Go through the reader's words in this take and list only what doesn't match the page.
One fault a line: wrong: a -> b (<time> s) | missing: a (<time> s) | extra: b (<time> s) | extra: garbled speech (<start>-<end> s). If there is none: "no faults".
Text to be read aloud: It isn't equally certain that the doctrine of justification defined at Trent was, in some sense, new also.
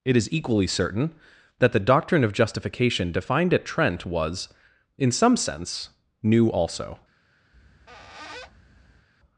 wrong: isn't -> is (0.2 s)